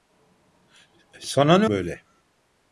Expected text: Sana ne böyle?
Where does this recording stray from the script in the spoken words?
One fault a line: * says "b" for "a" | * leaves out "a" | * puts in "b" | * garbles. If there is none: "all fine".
all fine